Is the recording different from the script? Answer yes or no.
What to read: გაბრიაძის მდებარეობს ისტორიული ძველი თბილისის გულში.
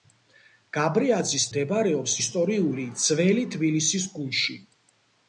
no